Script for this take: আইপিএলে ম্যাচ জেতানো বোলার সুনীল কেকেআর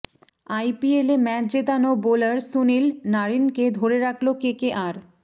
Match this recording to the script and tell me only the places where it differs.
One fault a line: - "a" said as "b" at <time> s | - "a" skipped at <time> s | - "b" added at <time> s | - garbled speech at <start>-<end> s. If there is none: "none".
- "নারিনকে ধরে রাখল" added at 3.1 s